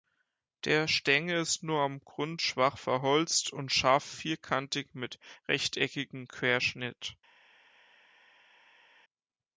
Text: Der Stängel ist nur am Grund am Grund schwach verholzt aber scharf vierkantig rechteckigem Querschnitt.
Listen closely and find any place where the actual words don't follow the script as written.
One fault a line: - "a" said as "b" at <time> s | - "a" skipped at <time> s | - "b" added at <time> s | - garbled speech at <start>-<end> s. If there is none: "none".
- "am Grund" skipped at 2.4 s
- "aber" said as "und" at 3.5 s
- "mit" added at 4.9 s